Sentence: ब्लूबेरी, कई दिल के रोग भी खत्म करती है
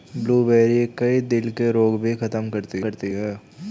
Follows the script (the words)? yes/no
no